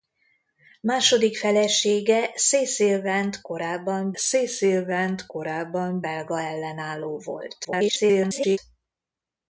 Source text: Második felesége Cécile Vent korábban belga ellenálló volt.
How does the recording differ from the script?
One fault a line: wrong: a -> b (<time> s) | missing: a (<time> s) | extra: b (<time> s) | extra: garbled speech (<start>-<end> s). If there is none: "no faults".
extra: Cécile Vent korábban (4.1 s)
extra: garbled speech (7.6-8.6 s)